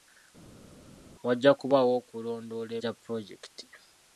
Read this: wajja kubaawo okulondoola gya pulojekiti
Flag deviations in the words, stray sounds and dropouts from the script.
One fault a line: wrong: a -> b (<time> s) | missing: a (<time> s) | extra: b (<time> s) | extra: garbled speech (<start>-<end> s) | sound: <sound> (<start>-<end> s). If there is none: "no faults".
no faults